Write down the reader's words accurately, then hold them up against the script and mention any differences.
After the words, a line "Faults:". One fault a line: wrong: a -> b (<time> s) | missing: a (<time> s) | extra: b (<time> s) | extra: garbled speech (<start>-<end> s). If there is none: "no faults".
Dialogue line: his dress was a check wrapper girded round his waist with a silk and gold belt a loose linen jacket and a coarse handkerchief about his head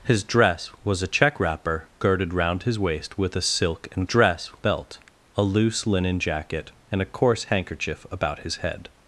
his dress was a check wrapper girded round his waist with a silk and dress belt a loose linen jacket and a coarse handkerchief about his head
Faults:
wrong: gold -> dress (4.0 s)